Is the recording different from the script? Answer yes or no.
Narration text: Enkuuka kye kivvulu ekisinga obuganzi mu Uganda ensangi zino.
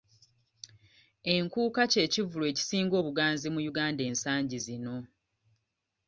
no